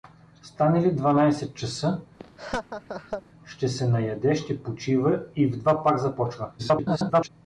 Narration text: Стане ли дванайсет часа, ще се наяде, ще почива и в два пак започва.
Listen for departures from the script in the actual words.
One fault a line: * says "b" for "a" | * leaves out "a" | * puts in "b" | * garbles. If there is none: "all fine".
* garbles